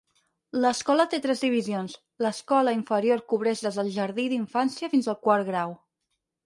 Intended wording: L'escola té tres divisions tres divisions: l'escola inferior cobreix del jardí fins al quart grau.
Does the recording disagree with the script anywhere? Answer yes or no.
yes